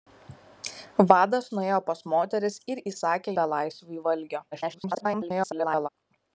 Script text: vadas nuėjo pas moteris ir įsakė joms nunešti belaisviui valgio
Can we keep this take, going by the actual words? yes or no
no